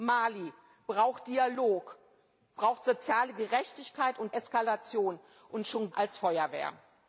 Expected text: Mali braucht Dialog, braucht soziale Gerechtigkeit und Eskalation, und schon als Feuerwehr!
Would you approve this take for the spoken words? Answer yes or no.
yes